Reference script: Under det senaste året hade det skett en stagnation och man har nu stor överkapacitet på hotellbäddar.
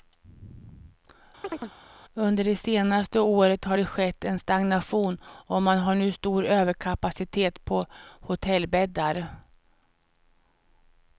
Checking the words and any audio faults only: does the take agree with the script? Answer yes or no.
no